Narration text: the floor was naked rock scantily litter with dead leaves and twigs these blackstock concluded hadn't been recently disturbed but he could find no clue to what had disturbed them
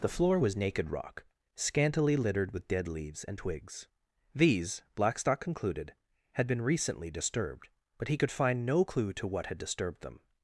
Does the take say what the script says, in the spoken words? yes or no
no